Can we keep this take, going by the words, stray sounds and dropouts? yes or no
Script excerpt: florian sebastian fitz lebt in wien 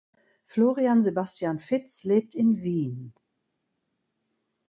yes